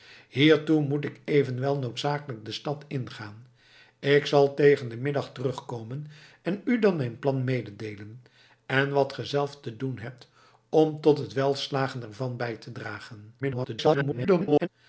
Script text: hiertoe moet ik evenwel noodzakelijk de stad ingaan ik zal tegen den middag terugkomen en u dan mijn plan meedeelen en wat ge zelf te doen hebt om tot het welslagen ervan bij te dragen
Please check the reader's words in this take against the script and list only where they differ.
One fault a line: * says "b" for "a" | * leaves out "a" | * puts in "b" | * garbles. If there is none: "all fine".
* garbles